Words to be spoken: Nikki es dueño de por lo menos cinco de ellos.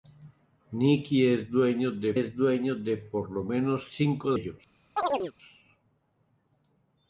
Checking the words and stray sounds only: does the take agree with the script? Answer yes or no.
no